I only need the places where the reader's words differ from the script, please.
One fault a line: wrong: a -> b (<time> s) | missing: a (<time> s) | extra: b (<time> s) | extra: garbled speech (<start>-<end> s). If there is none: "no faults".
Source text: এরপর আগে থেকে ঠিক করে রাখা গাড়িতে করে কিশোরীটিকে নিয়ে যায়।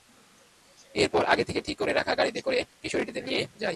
no faults